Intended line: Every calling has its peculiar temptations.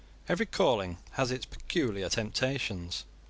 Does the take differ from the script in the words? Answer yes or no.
no